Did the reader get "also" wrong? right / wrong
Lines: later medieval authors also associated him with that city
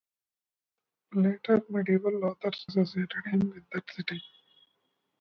wrong